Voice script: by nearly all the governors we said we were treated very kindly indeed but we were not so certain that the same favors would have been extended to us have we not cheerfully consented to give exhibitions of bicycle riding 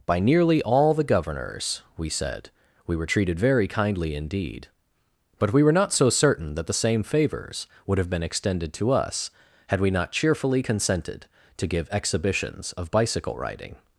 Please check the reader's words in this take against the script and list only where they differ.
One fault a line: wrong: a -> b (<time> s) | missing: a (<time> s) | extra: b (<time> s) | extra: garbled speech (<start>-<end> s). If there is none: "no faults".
wrong: have -> had (9.7 s)